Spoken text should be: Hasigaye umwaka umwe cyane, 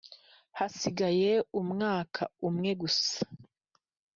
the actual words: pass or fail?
fail